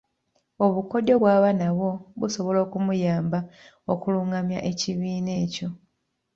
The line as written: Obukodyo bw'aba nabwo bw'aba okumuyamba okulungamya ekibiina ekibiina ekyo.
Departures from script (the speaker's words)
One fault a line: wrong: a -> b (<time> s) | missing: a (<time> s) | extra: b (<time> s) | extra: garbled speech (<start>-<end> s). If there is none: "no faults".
wrong: bw'aba -> busobola (2.2 s)
missing: ekibiina (5.3 s)